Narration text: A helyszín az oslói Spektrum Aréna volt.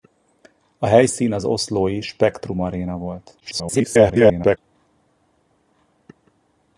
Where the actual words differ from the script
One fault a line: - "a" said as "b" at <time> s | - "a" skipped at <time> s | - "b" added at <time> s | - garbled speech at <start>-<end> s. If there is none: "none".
- garbled speech at 3.4-4.6 s